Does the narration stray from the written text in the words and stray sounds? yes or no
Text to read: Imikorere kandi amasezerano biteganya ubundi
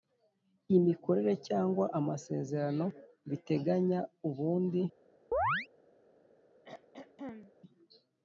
yes